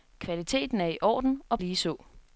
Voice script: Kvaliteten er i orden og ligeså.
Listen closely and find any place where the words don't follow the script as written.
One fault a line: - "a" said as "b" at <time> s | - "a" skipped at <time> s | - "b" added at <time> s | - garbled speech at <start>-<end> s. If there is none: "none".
none